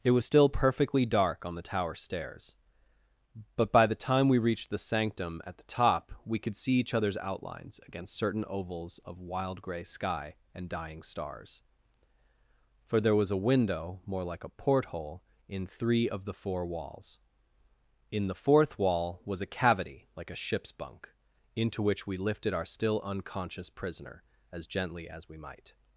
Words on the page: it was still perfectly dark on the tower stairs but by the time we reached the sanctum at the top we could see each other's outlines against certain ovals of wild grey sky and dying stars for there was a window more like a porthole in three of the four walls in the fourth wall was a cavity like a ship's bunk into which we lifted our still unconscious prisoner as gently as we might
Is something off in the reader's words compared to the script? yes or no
no